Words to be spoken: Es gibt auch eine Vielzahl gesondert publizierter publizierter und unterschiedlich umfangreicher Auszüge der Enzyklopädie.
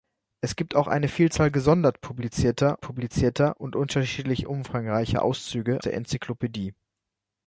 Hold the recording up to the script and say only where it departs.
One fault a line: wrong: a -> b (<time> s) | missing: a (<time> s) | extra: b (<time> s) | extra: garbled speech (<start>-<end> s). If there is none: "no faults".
no faults